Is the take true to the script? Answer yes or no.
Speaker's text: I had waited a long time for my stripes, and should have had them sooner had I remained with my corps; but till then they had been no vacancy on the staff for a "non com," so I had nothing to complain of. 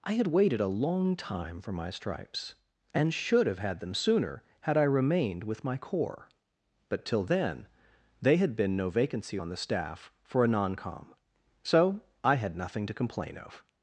yes